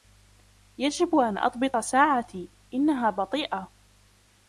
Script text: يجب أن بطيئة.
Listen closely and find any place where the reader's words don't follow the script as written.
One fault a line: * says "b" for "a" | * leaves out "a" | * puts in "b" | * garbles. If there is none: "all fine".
* puts in "أضبط ساعتي إنها"